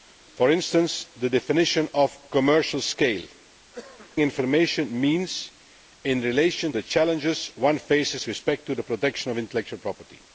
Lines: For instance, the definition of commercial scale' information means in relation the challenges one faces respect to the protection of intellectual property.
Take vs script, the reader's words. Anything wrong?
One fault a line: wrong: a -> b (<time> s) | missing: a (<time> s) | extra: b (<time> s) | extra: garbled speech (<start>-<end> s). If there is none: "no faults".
no faults